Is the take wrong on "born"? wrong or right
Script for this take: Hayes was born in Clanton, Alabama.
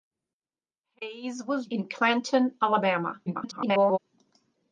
wrong